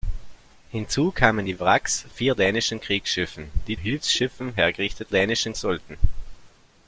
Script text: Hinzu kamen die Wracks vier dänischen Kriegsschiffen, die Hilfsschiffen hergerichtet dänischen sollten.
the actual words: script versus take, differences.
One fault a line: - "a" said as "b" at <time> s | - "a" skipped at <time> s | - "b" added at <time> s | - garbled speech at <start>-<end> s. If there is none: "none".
none